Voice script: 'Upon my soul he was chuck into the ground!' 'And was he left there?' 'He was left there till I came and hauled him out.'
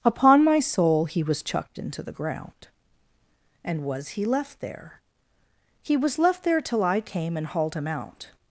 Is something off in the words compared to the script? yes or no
yes